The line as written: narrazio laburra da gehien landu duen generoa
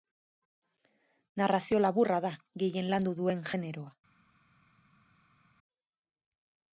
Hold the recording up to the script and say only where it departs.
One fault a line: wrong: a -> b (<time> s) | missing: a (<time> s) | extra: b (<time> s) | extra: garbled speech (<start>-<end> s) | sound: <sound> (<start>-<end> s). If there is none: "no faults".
no faults